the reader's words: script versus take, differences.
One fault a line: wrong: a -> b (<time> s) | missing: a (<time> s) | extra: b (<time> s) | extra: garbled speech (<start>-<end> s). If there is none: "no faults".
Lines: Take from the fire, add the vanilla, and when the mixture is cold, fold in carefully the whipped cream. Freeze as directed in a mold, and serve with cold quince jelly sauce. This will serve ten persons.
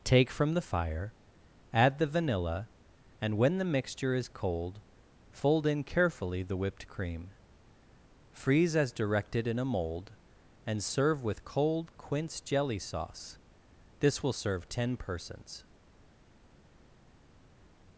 no faults